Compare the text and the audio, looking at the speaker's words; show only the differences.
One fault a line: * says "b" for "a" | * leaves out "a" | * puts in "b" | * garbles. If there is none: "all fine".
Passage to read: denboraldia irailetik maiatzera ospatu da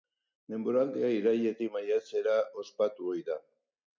* puts in "ohi"